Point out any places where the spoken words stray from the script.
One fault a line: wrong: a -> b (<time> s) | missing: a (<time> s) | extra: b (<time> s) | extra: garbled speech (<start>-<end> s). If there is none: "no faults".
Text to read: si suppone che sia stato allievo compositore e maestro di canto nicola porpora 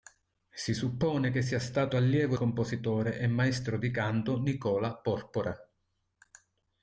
no faults